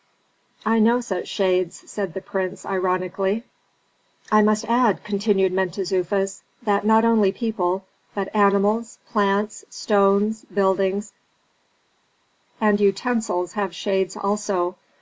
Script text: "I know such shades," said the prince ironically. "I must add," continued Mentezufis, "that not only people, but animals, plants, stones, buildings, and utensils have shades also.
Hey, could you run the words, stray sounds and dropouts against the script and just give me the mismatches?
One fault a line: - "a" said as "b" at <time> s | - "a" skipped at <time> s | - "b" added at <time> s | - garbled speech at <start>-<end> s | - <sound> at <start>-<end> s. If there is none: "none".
none